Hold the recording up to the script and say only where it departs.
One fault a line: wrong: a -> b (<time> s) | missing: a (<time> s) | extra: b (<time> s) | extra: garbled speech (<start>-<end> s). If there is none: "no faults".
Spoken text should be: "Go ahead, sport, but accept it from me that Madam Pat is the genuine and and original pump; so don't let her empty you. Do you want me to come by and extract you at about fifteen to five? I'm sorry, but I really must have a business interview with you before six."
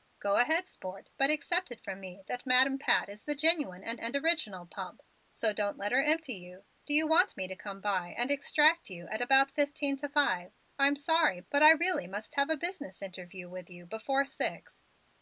no faults